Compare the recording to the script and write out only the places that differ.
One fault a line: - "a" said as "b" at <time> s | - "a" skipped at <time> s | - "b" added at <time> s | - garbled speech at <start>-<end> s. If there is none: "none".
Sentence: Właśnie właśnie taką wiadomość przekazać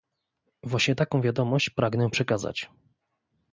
- "właśnie" skipped at 0.9 s
- "pragnę" added at 1.7 s